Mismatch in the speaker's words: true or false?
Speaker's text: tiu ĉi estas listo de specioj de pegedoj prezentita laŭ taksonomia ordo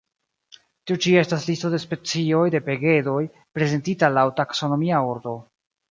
false